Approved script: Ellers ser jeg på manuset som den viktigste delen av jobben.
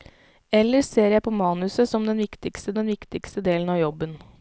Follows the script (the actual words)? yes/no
no